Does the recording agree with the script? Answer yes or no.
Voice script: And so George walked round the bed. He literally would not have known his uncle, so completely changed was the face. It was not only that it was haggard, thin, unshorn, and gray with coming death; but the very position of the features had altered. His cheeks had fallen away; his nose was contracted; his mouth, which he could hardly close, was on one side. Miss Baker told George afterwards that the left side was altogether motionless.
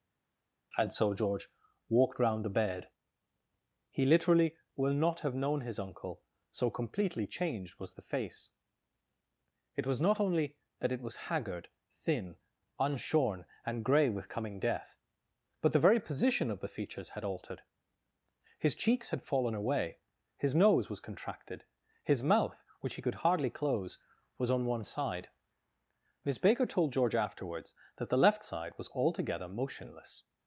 no